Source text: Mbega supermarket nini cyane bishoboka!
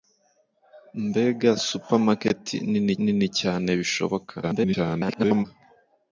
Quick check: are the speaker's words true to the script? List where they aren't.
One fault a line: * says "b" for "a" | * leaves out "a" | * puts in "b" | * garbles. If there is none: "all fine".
* puts in "nini"
* garbles